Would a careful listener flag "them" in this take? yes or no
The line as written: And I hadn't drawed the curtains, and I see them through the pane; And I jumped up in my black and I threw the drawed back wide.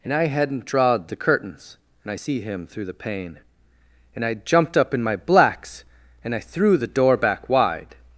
yes